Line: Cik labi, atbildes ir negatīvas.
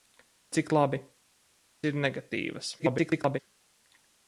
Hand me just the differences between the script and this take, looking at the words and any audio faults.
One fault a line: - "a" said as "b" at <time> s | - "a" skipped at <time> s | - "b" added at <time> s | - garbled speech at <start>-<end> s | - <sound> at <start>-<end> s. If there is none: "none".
- "atbildes" skipped at 1.0 s
- garbled speech at 2.8-3.4 s